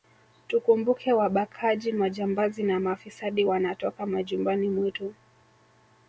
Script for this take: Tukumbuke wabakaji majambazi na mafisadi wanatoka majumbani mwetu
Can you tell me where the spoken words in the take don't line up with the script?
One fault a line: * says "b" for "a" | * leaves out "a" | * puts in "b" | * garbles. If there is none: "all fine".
all fine